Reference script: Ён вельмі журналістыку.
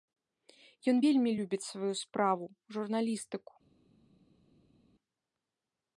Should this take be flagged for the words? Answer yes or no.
yes